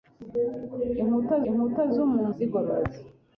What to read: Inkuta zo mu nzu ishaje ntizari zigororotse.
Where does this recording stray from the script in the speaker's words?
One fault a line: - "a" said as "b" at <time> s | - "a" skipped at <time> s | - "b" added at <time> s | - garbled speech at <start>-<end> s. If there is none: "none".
- "inkuta" added at 1.5 s
- "nzu ishaje ntizari" skipped at 2.3 s